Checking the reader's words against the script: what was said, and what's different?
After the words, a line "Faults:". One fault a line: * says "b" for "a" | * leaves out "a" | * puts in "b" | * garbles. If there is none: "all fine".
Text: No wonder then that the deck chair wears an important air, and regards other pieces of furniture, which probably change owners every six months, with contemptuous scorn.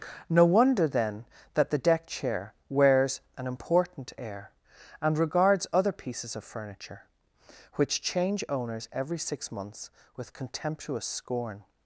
No wonder then that the deck chair wears an important air, and regards other pieces of furniture, which change owners every six months, with contemptuous scorn.
Faults:
* leaves out "probably"